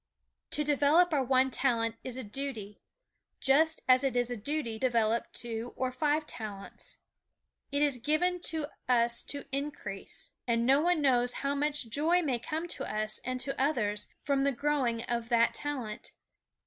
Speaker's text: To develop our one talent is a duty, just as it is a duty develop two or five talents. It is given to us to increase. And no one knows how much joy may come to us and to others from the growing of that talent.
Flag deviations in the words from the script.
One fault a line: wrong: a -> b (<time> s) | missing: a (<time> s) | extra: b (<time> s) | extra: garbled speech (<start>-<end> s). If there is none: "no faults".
no faults